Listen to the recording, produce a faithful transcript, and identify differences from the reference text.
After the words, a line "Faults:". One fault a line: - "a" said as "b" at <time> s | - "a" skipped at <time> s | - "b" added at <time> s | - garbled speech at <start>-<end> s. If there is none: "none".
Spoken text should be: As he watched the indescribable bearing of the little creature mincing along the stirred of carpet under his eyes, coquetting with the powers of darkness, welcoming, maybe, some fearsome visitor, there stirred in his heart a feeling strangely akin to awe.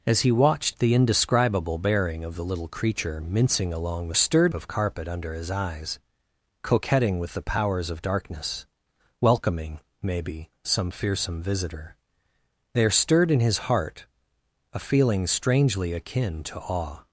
As he watched the indescribable bearing of the little creature mincing along the stirred of carpet under his eyes, coquetting with the powers of darkness, welcoming, maybe, some fearsome visitor, there stirred in his heart a feeling strangely akin to awe.
Faults:
none